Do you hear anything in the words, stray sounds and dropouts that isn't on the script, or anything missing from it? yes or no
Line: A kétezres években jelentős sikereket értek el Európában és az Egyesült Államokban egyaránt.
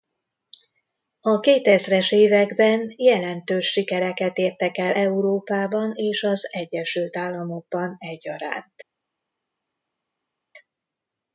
no